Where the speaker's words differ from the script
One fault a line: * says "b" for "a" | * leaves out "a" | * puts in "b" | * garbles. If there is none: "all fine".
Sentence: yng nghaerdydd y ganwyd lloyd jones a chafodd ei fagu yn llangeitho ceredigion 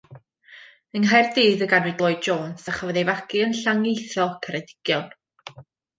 all fine